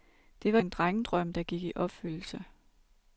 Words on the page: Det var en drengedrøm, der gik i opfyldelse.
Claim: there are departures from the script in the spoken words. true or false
false